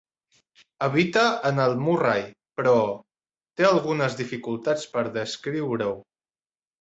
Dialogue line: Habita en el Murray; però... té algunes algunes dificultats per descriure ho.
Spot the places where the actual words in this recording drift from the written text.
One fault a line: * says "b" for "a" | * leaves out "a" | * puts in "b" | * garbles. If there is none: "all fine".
* leaves out "algunes"